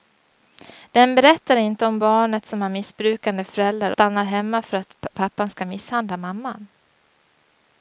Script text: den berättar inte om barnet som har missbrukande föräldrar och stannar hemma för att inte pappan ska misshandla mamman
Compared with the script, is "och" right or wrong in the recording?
wrong